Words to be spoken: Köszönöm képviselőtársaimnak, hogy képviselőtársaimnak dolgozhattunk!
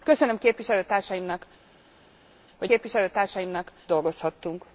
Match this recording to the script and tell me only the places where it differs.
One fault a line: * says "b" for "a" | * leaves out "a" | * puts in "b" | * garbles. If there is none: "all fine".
all fine